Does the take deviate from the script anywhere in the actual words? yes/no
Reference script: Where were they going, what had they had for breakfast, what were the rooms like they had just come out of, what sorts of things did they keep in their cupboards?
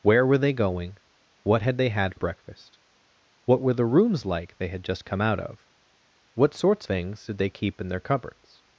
yes